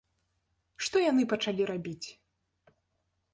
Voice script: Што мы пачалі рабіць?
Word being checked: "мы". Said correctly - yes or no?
no